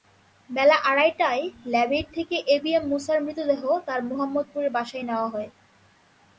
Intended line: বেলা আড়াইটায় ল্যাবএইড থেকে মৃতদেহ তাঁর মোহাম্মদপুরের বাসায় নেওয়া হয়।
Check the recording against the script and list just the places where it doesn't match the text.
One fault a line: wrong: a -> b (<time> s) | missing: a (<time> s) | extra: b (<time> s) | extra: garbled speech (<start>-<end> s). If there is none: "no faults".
extra: এবিএম মূসার (2.5 s)